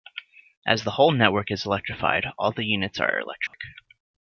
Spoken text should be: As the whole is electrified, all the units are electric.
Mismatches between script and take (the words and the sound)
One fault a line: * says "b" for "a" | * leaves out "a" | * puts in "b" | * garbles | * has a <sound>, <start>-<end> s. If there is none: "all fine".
* puts in "network"
* has a dropout, 3.5-3.5 s